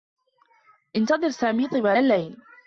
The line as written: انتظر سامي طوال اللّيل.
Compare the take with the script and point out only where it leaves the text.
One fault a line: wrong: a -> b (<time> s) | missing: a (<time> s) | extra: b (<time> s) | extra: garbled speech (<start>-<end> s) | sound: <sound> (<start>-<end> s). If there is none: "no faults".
no faults